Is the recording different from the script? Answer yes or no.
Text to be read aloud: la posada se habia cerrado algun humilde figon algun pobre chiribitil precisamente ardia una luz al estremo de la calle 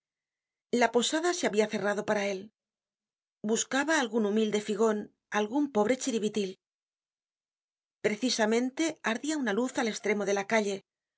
yes